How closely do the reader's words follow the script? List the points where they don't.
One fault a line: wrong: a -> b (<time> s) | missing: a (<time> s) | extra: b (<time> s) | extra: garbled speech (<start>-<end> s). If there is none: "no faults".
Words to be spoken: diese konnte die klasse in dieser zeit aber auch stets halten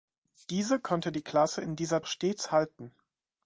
missing: zeit aber (2.0 s)